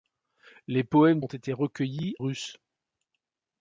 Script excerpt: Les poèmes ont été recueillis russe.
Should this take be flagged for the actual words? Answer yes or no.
no